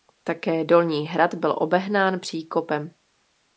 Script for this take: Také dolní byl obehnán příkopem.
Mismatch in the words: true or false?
true